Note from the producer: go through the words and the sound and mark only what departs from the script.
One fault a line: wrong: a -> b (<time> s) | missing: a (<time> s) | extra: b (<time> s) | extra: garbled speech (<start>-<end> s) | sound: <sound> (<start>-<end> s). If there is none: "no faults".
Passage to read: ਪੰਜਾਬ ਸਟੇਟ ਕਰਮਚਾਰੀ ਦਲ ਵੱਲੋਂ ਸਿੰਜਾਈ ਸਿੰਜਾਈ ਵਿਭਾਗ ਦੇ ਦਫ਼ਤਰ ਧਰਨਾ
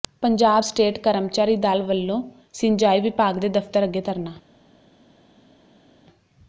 missing: ਸਿੰਜਾਈ (3.0 s)
extra: ਅੱਗੇ (3.8 s)